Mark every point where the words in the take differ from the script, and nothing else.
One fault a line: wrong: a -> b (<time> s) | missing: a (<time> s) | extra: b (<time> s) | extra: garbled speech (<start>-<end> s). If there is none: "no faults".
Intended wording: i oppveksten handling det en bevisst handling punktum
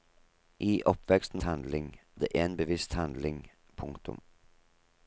no faults